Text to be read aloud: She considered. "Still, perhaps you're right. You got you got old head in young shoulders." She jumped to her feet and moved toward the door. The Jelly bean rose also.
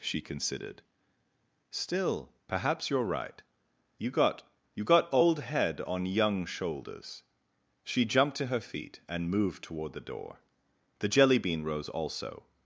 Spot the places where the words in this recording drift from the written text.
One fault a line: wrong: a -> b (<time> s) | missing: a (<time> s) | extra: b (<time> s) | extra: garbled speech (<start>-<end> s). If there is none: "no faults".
wrong: in -> on (5.8 s)